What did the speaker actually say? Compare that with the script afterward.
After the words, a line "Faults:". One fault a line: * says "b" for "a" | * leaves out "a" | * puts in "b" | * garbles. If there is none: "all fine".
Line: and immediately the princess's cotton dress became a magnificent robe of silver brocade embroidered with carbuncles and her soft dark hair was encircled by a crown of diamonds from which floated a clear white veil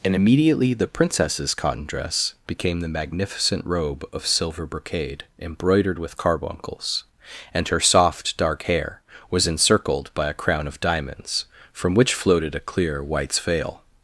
and immediately the princess's cotton dress became the magnificent robe of silver brocade embroidered with carbuncles and her soft dark hair was encircled by a crown of diamonds from which floated a clear whites veil
Faults:
* says "the" for "a"
* says "whites" for "white"